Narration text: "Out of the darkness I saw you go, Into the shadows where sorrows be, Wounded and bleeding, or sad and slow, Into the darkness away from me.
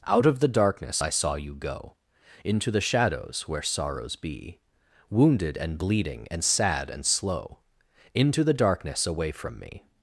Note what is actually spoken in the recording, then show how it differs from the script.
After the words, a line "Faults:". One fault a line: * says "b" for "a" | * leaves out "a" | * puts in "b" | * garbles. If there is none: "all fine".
"Out of the darkness I saw you go, Into the shadows where sorrows be, Wounded and bleeding, and sad and slow, Into the darkness away from me.
Faults:
* says "and" for "or"